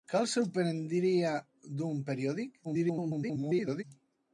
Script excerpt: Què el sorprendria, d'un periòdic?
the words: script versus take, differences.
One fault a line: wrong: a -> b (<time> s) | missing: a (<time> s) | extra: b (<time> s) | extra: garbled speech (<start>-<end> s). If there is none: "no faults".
extra: garbled speech (2.6-3.8 s)